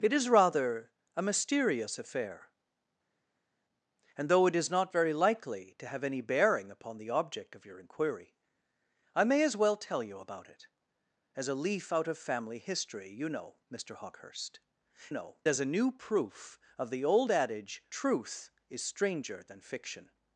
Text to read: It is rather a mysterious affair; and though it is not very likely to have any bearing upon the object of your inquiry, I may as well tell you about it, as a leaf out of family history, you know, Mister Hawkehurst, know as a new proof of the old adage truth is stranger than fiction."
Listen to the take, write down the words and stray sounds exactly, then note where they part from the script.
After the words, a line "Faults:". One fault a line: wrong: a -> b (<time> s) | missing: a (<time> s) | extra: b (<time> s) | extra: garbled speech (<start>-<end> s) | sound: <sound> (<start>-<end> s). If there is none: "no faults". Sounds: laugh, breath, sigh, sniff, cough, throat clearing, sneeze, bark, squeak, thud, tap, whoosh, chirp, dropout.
It is rather a mysterious affair; and though it is not very likely to have any bearing upon the object of your inquiry, I may as well tell you about it, as a leaf out of family history, you know, Mister Hawkehurst, know as a new proof of the old adage truth is stranger than fiction."
Faults:
no faults